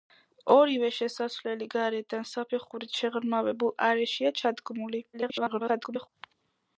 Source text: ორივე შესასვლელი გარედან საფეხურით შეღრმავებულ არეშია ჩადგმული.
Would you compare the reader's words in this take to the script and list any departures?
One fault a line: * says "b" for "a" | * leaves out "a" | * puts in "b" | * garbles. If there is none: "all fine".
* garbles